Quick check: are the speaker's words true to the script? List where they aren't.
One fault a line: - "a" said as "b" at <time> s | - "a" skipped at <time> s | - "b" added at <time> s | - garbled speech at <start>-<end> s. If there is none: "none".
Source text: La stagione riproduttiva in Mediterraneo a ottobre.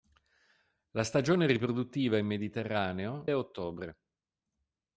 none